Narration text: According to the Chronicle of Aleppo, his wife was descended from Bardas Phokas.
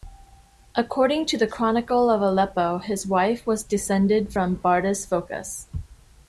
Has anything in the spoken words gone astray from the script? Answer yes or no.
no